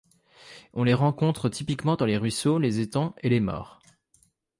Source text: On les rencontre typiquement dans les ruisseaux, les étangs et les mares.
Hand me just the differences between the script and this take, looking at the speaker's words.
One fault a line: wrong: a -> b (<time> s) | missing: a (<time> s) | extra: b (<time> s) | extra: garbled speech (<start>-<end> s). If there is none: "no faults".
no faults